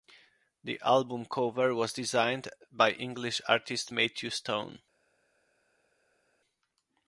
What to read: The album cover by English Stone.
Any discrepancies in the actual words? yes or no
yes